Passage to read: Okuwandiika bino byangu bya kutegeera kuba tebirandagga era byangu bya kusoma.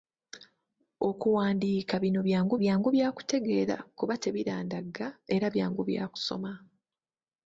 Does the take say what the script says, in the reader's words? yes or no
no